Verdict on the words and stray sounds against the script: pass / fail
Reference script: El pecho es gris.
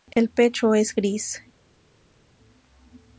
pass